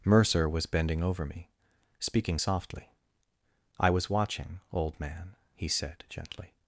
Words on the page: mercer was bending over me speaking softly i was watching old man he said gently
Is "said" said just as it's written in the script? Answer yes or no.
yes